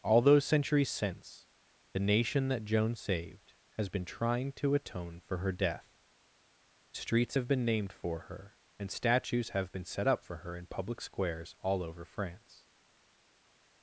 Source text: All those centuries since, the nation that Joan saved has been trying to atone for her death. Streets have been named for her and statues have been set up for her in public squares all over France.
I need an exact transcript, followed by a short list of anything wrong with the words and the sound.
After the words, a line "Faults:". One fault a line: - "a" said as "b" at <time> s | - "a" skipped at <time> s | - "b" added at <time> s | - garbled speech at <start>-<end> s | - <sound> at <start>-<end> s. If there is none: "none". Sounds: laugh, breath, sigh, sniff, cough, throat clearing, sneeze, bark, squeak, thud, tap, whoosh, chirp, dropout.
All those centuries since, the nation that Joan saved has been trying to atone for her death. Streets have been named for her and statues have been set up for her in public squares all over France.
Faults:
none